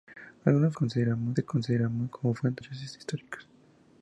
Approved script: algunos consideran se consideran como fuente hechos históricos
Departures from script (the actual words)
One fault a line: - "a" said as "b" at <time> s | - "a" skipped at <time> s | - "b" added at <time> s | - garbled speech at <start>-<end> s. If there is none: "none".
none